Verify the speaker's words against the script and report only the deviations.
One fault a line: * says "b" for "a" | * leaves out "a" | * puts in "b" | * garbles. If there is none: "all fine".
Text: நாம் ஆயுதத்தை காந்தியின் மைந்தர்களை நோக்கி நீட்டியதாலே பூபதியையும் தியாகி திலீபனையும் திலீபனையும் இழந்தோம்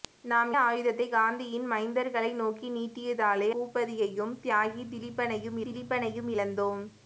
all fine